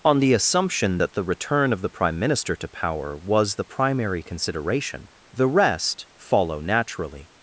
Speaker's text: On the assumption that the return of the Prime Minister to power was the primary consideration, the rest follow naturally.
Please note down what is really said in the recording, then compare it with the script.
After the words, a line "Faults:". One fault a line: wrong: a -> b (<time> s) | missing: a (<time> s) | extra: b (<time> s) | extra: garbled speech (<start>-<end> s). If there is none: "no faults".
On the assumption that the return of the Prime Minister to power was the primary consideration, the rest follow naturally.
Faults:
no faults